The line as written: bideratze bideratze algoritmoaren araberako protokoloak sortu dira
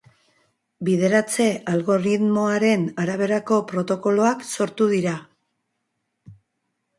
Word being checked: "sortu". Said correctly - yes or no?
yes